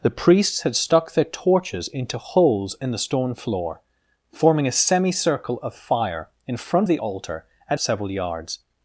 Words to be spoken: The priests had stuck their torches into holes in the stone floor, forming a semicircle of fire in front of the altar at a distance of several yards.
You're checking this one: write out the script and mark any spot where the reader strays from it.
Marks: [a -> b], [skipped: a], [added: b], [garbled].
The priests had stuck their torches into holes in the stone floor, forming a semicircle of fire in front [skipped: of] the altar at [skipped: a distance of] several yards.